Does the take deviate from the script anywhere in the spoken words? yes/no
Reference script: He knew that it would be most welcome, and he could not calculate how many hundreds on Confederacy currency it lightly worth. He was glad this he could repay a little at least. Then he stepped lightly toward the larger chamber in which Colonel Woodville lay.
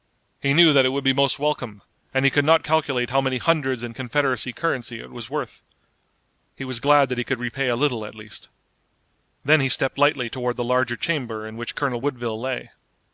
yes